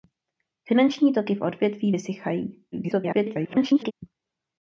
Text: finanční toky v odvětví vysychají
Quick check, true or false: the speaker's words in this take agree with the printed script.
false